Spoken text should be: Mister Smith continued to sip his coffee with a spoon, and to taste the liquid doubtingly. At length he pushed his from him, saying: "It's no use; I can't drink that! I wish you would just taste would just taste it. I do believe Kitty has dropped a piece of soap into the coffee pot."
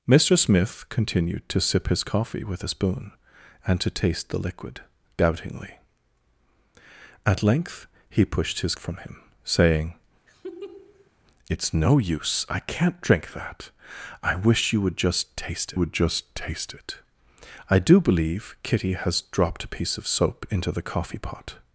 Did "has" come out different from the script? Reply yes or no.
no